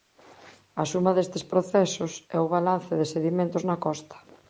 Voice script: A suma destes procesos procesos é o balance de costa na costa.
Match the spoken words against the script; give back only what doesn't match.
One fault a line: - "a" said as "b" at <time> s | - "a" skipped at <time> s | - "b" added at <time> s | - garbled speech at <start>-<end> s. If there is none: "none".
- "procesos" skipped at 2.1 s
- "costa" said as "sedimentos" at 3.1 s